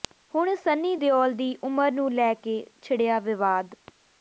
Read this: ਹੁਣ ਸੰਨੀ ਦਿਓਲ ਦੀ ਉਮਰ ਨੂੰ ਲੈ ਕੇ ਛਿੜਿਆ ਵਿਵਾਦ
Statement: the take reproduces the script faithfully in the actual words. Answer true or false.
true